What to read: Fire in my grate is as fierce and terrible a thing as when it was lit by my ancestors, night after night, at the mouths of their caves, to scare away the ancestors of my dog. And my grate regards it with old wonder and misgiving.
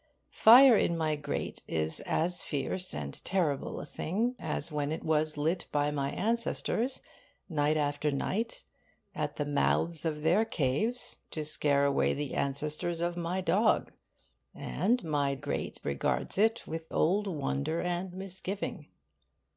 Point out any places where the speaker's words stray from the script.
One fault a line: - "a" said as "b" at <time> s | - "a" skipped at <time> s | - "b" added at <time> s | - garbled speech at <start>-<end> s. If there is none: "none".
none